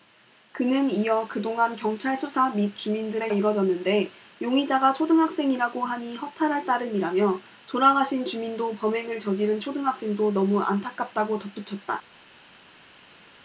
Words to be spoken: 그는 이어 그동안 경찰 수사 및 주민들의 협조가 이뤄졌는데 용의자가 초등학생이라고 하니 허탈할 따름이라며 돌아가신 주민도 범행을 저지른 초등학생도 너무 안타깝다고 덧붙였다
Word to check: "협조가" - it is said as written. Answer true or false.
false